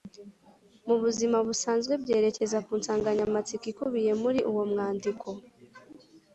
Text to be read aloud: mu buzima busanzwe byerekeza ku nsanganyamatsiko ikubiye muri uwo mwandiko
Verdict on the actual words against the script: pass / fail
pass